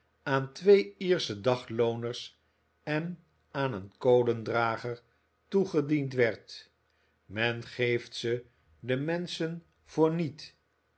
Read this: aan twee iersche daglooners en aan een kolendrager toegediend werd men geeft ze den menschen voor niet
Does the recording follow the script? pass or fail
pass